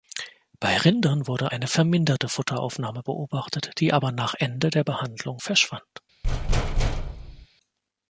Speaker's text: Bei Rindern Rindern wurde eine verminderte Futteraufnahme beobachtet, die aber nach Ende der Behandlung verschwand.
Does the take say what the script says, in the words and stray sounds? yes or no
no